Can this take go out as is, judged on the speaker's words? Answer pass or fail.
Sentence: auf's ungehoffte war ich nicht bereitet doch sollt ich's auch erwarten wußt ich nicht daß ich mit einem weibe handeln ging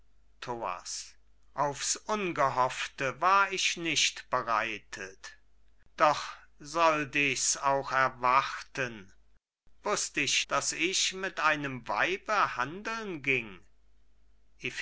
fail